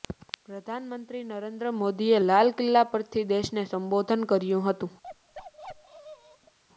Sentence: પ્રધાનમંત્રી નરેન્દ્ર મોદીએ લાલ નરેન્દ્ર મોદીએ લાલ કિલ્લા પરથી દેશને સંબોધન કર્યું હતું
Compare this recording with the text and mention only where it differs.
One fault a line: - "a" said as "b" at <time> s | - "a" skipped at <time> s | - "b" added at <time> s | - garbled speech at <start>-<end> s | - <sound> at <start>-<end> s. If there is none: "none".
- "નરેન્દ્ર મોદીએ લાલ" skipped at 2.5 s
- bark at 5.0-6.6 s